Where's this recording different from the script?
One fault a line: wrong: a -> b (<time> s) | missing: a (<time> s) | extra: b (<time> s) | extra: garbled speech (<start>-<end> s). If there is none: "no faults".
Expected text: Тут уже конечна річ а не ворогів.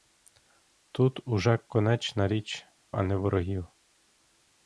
no faults